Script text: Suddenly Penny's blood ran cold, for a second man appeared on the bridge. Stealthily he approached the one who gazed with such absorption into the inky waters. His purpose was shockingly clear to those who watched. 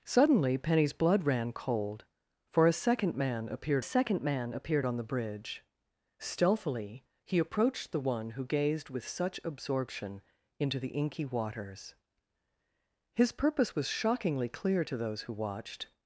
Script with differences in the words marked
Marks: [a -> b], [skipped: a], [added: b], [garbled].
Suddenly Penny's blood ran cold, for a second man appeared [added: second man appeared] on the bridge. Stealthily he approached the one who gazed with such absorption into the inky waters. His purpose was shockingly clear to those who watched.